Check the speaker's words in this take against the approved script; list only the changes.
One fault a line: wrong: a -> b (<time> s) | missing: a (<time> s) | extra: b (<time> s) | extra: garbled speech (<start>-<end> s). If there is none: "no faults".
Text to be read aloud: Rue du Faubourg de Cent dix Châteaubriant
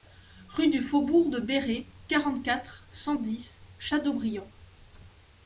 extra: Béré quarante quatre (1.4 s)